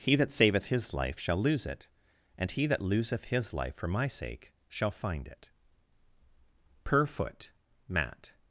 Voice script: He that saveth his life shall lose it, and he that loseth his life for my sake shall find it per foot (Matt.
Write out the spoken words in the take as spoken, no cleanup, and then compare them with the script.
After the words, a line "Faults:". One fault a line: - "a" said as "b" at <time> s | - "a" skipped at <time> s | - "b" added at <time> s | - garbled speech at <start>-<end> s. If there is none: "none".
He that saveth his life shall lose it, and he that loseth his life for my sake shall find it per foot (Matt.
Faults:
none